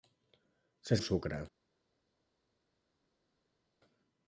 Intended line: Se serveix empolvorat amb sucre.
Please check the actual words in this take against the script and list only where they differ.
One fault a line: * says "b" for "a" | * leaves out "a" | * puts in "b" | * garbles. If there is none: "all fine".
* leaves out "serveix empolvorat"